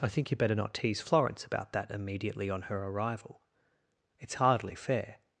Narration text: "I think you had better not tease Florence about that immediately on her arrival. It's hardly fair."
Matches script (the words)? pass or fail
fail